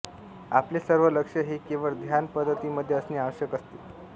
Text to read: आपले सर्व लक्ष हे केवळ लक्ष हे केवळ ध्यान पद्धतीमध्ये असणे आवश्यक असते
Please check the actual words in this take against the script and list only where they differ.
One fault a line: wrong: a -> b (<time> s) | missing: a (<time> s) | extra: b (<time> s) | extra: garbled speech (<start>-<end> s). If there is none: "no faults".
missing: लक्ष हे केवळ (1.9 s)